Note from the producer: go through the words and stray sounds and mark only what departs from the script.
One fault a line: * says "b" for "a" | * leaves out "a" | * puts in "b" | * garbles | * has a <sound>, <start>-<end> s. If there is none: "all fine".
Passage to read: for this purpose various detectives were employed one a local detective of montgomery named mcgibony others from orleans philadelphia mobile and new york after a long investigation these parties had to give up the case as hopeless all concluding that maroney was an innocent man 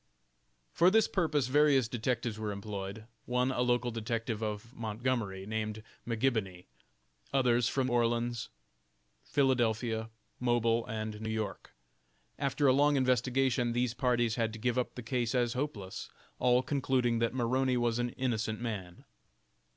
all fine